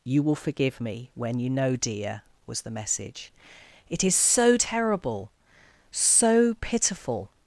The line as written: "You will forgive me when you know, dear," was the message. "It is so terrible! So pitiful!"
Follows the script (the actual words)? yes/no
yes